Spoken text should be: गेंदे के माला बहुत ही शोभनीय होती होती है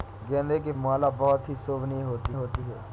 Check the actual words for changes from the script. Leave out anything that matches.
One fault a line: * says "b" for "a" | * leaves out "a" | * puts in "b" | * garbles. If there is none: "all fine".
all fine